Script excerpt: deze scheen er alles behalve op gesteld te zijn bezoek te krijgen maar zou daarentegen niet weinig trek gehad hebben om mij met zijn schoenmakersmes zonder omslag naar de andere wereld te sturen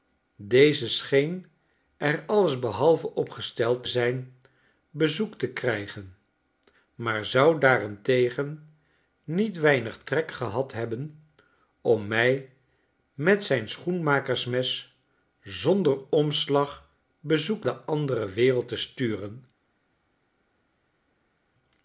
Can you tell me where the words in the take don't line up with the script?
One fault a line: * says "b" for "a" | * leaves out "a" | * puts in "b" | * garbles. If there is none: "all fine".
* leaves out "te"
* says "bezoek" for "naar"